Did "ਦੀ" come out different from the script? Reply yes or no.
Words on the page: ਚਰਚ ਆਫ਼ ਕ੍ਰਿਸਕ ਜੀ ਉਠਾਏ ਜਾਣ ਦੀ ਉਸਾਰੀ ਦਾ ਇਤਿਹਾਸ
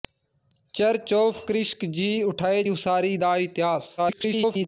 yes